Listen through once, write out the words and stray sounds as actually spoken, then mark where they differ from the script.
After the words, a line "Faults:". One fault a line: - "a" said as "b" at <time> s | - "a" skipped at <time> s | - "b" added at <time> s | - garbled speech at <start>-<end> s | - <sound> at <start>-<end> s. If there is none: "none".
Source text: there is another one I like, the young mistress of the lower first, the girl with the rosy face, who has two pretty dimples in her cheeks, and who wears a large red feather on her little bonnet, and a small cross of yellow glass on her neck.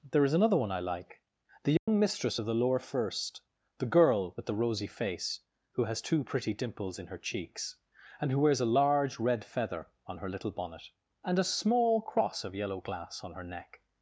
there is another one I like, the young mistress of the lower first, the girl with the rosy face, who has two pretty dimples in her cheeks, and who wears a large red feather on her little bonnet, and a small cross of yellow glass on her neck.
Faults:
- dropout at 1.8-1.9 s